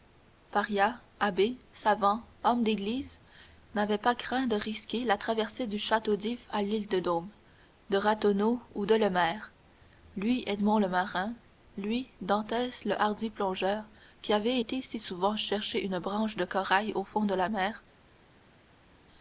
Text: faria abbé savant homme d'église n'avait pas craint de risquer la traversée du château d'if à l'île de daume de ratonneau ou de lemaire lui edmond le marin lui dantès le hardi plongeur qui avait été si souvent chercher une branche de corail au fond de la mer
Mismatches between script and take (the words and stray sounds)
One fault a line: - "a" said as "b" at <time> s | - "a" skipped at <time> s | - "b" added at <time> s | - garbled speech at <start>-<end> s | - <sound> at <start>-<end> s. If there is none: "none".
none